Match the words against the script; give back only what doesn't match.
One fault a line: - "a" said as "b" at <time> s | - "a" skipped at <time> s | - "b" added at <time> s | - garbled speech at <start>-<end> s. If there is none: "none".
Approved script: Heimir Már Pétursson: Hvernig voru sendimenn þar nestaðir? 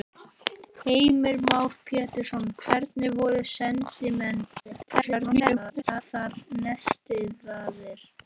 - garbled speech at 4.6-6.0 s